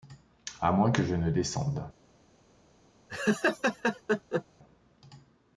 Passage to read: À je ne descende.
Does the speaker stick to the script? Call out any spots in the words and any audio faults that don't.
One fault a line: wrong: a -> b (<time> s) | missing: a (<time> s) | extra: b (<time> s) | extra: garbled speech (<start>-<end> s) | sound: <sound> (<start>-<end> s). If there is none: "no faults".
extra: moins que (0.7 s)
sound: laugh (3.1-4.4 s)